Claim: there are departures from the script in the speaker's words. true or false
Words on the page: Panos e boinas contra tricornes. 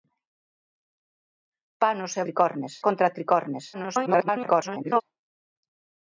true